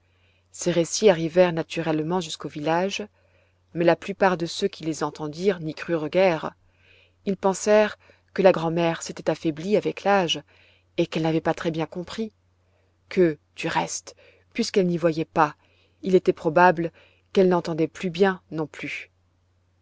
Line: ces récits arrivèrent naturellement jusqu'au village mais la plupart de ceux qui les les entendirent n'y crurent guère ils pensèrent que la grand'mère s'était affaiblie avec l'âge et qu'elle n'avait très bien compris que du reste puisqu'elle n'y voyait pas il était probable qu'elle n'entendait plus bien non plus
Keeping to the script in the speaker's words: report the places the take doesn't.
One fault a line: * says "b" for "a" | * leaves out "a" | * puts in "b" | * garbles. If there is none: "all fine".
* leaves out "les"
* puts in "pas"